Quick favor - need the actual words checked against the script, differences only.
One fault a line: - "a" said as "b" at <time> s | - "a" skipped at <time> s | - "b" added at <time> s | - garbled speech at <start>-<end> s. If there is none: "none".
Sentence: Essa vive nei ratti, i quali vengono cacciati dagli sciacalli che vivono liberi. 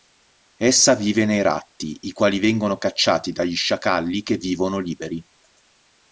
none